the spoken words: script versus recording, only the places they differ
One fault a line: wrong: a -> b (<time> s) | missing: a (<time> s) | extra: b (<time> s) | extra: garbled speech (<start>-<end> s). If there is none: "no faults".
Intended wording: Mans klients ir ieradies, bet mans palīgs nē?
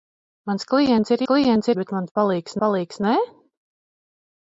wrong: ieradies -> klients (1.3 s)
extra: palīgs (2.7 s)